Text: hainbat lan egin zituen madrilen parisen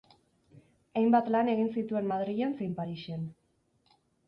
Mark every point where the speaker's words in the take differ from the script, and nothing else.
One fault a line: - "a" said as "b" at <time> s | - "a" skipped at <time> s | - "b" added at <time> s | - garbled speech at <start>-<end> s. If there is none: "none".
- "zein" added at 2.6 s